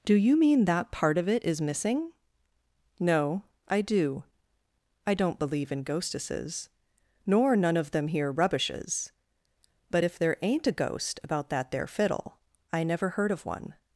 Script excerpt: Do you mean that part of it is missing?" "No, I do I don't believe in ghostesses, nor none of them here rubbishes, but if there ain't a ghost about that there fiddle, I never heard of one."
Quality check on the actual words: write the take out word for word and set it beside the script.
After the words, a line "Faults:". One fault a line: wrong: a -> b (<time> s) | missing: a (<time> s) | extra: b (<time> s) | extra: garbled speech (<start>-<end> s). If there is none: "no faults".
Do you mean that part of it is missing?" "No, I do I don't believe in ghostesses, nor none of them here rubbishes, but if there ain't a ghost about that there fiddle, I never heard of one."
Faults:
no faults